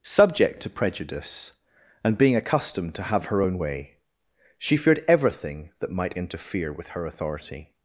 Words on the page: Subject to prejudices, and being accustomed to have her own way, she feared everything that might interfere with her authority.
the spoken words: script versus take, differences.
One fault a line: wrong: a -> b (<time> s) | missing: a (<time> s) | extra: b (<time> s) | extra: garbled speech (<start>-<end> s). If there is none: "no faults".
wrong: prejudices -> prejudice (0.7 s)